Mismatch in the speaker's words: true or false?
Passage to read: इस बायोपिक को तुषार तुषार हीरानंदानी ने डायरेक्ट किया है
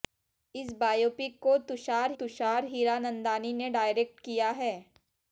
false